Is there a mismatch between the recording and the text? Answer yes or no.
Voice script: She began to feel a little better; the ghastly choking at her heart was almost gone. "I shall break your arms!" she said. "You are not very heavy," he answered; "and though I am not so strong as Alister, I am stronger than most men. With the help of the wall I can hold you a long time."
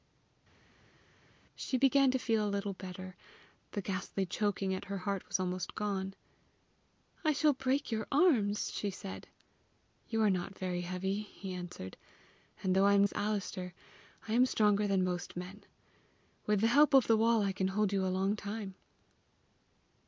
yes